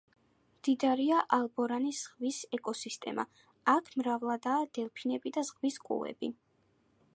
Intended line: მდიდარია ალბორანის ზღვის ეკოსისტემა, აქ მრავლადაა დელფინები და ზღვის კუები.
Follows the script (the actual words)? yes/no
yes